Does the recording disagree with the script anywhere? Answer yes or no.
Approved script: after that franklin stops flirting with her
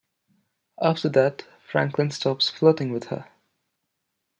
no